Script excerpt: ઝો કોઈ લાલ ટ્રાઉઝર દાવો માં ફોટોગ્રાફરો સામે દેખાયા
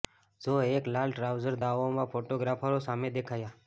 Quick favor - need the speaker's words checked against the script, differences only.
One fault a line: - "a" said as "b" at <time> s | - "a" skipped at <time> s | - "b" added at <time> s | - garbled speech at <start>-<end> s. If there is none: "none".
- "કોઈ" said as "એક" at 0.7 s